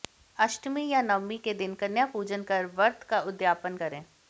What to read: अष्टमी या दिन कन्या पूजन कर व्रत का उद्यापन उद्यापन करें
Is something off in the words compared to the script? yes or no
yes